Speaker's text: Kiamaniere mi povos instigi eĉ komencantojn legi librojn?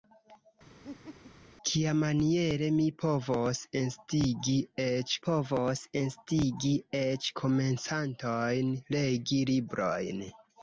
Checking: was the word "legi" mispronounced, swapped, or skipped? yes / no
no